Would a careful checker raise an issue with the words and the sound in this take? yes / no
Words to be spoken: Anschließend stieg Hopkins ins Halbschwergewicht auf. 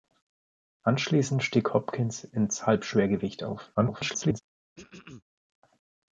yes